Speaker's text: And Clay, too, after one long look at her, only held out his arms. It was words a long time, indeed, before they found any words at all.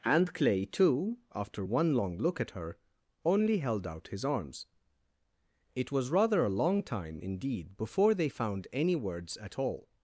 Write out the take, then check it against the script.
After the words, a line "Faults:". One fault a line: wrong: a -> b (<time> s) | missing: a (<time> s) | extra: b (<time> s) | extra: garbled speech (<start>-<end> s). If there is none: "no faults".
And Clay, too, after one long look at her, only held out his arms. It was rather a long time, indeed, before they found any words at all.
Faults:
wrong: words -> rather (6.1 s)